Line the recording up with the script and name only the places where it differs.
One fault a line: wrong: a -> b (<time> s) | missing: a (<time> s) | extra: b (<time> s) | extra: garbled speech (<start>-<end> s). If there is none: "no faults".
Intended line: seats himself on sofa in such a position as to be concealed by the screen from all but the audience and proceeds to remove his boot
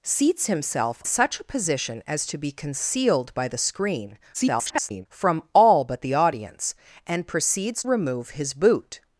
missing: on sofa in (1.0 s)
extra: garbled speech (4.3-5.1 s)
missing: to (7.8 s)